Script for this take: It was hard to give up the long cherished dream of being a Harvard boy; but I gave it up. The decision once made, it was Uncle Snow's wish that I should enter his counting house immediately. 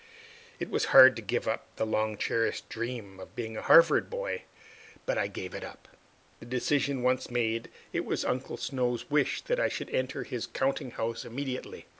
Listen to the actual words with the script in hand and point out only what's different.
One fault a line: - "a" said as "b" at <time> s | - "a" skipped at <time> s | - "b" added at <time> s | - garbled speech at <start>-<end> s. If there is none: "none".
none